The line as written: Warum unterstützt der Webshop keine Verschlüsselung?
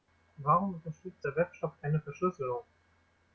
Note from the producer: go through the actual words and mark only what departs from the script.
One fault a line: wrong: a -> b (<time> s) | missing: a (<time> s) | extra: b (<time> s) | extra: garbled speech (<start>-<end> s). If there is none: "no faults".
no faults